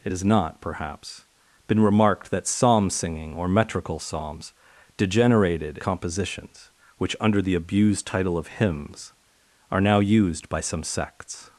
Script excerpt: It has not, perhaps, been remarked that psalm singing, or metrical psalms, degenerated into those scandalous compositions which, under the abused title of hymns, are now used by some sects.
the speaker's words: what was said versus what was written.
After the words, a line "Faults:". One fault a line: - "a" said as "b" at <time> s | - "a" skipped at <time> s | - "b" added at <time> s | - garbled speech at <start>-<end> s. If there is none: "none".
It has not, perhaps, been remarked that psalm singing, or metrical psalms, degenerated compositions which, under the abused title of hymns, are now used by some sects.
Faults:
- "into those scandalous" skipped at 5.8 s